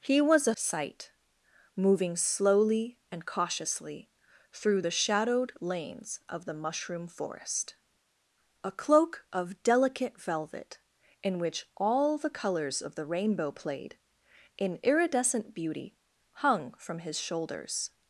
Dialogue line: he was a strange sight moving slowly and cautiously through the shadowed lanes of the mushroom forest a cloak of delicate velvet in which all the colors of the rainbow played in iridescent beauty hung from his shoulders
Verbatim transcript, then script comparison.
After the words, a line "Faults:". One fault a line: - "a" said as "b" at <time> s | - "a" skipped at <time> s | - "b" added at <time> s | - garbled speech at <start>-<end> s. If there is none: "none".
he was a sight moving slowly and cautiously through the shadowed lanes of the mushroom forest a cloak of delicate velvet in which all the colors of the rainbow played in iridescent beauty hung from his shoulders
Faults:
- "strange" skipped at 0.6 s